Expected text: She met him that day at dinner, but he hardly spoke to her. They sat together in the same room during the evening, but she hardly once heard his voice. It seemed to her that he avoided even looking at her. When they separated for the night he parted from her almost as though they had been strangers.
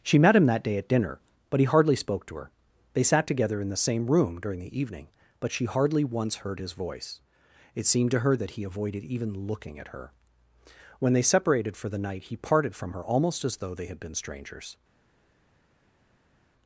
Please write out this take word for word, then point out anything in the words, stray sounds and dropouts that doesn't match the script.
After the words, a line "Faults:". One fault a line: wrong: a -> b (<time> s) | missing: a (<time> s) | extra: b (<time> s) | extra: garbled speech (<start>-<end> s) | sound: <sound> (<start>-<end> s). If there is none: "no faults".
She met him that day at dinner, but he hardly spoke to her. They sat together in the same room during the evening, but she hardly once heard his voice. It seemed to her that he avoided even looking at her. When they separated for the night he parted from her almost as though they had been strangers.
Faults:
no faults